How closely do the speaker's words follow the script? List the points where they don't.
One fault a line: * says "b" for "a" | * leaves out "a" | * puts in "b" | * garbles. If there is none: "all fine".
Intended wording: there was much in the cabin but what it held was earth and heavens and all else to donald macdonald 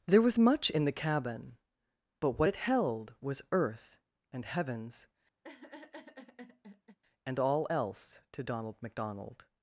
all fine